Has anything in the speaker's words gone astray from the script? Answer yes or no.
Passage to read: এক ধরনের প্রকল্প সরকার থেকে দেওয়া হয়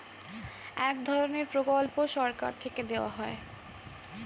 no